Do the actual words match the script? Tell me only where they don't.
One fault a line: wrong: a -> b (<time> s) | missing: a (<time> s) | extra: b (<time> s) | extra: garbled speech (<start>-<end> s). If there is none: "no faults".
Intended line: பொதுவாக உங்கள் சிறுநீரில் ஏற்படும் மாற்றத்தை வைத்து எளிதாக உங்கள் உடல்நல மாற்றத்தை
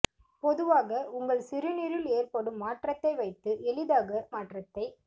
missing: உங்கள் உடல்நல (4.1 s)